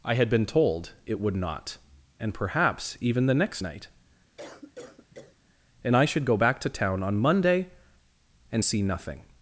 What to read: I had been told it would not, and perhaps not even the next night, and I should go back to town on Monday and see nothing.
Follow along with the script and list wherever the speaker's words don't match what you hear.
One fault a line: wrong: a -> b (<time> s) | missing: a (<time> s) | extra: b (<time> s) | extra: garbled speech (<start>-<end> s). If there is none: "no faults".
missing: not (3.0 s)